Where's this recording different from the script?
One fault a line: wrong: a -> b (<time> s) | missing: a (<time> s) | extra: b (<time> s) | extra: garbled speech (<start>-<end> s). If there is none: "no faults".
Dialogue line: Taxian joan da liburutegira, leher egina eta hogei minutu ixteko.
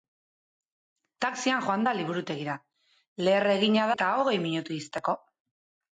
no faults